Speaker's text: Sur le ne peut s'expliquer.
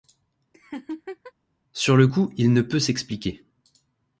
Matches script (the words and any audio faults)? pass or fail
fail